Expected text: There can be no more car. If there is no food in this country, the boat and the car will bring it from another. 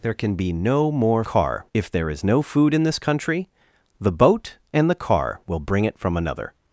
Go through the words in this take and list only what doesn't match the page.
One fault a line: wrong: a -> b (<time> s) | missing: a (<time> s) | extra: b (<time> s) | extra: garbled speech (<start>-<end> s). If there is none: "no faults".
no faults